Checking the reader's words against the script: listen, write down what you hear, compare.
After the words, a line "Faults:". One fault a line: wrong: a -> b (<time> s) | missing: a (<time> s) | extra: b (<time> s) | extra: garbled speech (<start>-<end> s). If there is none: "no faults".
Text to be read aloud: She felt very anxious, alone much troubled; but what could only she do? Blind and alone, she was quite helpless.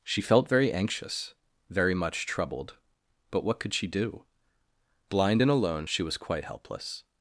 She felt very anxious, very much troubled; but what could she do? Blind and alone, she was quite helpless.
Faults:
wrong: alone -> very (1.7 s)
missing: only (3.7 s)